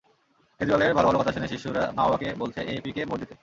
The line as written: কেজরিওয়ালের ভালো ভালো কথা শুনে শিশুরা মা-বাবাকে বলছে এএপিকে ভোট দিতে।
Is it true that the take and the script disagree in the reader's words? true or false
false